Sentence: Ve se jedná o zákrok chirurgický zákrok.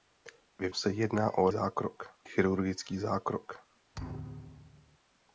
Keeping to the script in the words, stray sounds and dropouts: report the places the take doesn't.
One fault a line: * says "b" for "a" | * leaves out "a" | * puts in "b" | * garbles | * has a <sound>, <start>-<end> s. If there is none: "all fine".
* has a thud, 3.9-5.0 s